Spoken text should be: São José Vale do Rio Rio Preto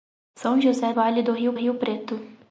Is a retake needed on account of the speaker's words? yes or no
no